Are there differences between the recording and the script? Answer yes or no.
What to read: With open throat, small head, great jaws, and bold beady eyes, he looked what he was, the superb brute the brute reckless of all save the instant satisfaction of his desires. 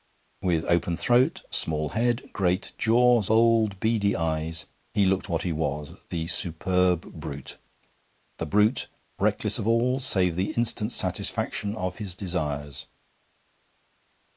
yes